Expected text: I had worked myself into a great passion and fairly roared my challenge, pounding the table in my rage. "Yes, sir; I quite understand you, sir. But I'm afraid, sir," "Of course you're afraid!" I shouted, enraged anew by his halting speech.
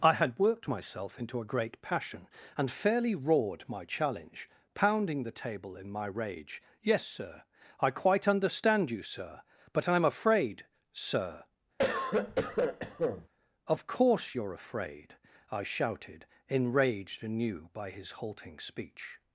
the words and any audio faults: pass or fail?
fail